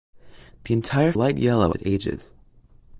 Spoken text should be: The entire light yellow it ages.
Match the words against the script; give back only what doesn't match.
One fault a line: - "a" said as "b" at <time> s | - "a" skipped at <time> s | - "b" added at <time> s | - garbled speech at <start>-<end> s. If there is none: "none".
none